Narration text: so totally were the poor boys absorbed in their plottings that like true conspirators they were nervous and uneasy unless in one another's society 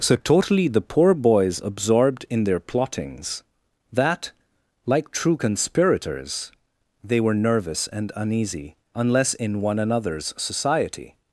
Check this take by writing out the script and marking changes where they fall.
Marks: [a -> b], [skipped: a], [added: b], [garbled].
so totally [skipped: were] the poor boys absorbed in their plottings that like true conspirators they were nervous and uneasy unless in one another's society